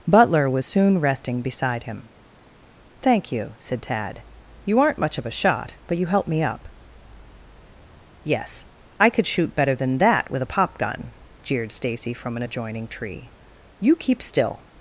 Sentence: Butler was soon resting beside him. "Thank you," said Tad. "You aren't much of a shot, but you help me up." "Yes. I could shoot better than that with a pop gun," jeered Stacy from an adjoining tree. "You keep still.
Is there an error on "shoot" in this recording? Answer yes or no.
no